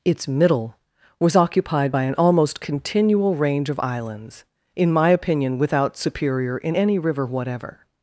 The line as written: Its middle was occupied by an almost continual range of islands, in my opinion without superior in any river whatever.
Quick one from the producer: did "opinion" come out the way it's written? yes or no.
yes